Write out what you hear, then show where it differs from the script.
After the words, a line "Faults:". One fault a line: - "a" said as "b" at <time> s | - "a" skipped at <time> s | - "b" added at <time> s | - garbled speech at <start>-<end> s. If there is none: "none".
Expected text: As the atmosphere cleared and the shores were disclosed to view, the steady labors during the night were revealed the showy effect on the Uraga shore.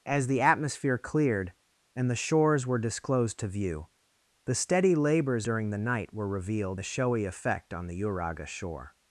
As the atmosphere cleared and the shores were disclosed to view, the steady labors during the night were revealed the showy effect on the Uraga shore.
Faults:
none